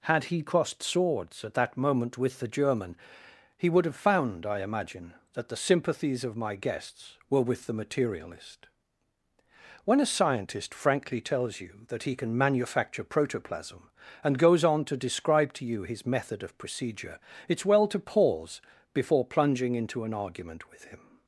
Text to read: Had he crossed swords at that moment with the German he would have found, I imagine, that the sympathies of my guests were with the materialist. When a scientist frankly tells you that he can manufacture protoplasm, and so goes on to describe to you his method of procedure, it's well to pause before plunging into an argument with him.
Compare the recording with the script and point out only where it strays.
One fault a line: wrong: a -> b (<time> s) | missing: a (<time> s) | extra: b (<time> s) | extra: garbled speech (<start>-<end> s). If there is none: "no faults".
missing: so (14.4 s)